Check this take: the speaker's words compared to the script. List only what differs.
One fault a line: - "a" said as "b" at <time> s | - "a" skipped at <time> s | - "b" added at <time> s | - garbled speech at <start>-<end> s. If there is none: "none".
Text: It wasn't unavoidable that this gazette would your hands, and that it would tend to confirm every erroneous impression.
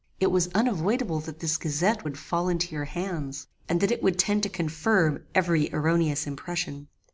- "wasn't" said as "was" at 0.3 s
- "fall into" added at 2.2 s